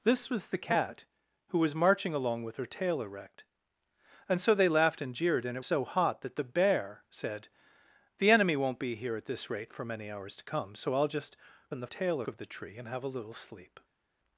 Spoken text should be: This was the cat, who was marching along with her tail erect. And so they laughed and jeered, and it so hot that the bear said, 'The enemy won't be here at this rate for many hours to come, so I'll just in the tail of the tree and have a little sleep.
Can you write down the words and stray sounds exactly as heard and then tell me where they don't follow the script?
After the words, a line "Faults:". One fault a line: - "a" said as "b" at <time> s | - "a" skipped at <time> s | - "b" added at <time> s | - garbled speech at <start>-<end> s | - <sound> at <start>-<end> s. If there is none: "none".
This was the cat, who was marching along with her tail erect. And so they laughed and jeered, and it so hot that the bear said, 'The enemy won't be here at this rate for many hours to come, so I'll just in the tail of the tree and have a little sleep.
Faults:
none